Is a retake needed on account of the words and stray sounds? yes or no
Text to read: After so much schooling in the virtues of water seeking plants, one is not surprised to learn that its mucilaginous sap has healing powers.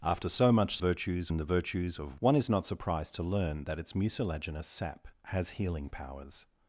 yes